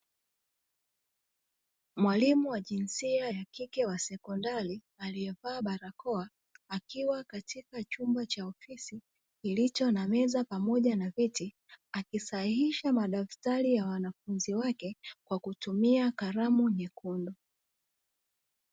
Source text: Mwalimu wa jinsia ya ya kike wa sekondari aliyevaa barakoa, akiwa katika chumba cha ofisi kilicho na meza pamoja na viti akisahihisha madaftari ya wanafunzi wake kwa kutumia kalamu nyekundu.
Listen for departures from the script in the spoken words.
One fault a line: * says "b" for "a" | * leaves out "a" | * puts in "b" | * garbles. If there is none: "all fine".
* leaves out "ya"